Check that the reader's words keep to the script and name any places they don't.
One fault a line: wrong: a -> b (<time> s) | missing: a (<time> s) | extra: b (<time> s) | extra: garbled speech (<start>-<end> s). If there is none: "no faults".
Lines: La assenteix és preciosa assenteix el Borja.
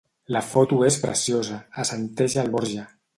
wrong: assenteix -> foto (0.5 s)